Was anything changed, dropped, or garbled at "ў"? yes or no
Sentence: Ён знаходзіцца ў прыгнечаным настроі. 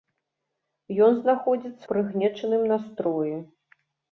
yes